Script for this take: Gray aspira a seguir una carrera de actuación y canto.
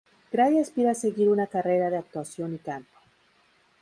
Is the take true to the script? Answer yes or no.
yes